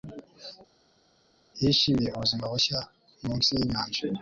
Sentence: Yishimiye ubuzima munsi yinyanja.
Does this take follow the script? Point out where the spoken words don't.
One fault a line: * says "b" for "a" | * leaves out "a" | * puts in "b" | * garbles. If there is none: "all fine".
* puts in "bushya"